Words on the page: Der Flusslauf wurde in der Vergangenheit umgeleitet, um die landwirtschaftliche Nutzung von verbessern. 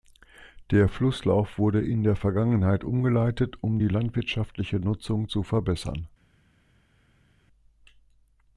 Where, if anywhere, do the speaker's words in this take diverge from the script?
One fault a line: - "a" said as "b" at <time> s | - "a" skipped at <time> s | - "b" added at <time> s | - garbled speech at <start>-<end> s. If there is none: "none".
- "von" said as "zu" at 5.3 s